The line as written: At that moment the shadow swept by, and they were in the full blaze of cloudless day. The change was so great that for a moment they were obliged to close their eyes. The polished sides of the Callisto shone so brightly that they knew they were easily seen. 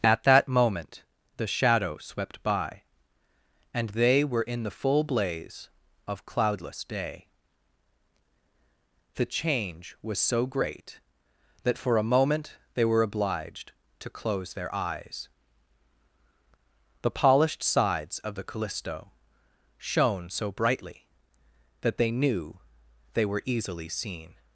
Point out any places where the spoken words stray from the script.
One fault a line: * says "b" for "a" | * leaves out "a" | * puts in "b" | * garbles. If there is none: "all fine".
all fine